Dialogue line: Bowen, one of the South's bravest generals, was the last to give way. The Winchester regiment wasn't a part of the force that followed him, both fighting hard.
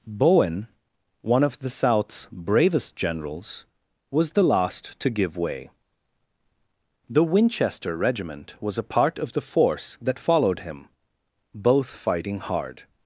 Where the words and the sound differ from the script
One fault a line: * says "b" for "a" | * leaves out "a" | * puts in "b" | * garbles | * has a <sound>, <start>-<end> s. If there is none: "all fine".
* says "was" for "wasn't"